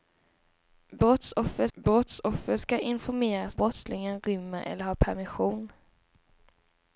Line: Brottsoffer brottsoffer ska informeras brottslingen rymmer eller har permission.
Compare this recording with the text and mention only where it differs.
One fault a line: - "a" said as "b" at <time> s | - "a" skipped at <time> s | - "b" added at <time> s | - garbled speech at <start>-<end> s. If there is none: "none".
none